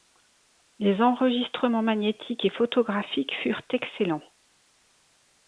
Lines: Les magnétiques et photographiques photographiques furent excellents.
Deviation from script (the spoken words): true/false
true